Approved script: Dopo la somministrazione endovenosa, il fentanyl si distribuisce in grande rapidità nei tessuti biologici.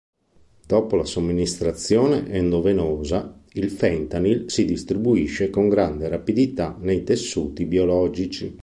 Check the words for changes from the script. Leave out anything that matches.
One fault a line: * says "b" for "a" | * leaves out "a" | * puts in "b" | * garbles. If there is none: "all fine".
* says "con" for "in"